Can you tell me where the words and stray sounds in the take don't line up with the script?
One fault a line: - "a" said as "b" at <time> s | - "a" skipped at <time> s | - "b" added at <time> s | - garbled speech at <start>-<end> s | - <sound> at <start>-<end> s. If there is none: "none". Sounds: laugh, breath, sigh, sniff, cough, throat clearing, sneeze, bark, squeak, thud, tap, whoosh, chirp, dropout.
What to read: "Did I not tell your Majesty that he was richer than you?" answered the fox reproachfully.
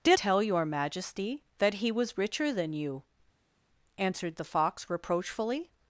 - "I not" skipped at 0.2 s